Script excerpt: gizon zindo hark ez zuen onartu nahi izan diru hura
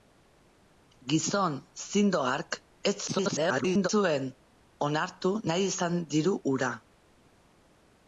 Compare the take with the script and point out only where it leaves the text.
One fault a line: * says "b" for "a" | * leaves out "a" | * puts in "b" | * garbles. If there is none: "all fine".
* garbles